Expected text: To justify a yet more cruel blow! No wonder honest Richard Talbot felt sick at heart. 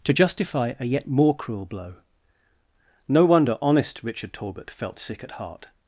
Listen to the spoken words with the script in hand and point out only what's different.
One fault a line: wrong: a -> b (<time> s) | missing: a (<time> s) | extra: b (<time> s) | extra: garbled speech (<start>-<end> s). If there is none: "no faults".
no faults